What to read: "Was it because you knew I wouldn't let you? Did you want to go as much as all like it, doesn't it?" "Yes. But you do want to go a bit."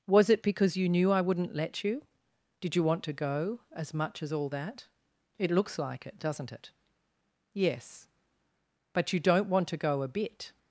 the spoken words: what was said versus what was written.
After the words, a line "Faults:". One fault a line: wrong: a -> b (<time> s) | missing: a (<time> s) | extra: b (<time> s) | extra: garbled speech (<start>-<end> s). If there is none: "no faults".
"Was it because you knew I wouldn't let you? Did you want to go as much as all that?" "It looks like it, doesn't it?" "Yes. But you don't want to go a bit."
Faults:
extra: that It looks (4.5 s)
wrong: do -> don't (9.2 s)